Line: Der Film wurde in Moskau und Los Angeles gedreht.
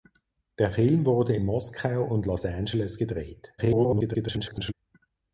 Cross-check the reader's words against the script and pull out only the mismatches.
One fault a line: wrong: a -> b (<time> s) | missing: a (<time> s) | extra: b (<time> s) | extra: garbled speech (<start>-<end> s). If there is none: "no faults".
extra: garbled speech (3.6-4.7 s)